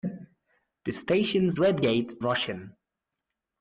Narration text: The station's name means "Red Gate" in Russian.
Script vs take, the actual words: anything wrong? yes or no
yes